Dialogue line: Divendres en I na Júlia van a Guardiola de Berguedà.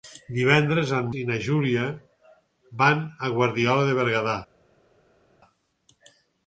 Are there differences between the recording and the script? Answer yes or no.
no